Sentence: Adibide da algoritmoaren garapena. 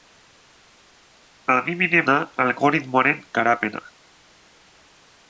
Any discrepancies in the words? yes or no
no